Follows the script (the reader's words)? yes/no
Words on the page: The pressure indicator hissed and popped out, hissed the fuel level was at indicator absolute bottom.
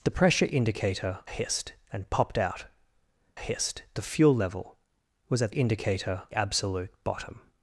yes